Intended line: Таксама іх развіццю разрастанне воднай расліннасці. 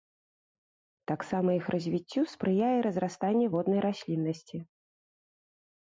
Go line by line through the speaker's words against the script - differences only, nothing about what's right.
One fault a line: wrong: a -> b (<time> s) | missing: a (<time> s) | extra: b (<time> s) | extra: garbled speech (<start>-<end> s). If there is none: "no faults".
extra: спрыяе (2.3 s)